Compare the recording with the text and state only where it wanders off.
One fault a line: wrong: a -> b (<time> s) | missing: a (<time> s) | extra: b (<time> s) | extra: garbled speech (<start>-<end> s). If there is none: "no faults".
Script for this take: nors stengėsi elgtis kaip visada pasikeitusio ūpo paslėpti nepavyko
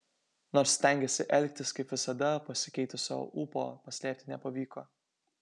no faults